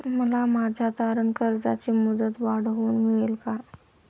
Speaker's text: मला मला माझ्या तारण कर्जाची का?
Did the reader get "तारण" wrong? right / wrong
right